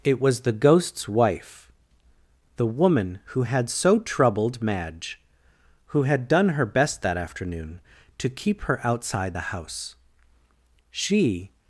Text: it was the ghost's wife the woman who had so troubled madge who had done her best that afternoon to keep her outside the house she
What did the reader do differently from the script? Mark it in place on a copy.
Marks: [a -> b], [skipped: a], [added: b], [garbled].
it was the ghost's wife the woman who had so troubled madge who had done her best that afternoon to keep her outside the house she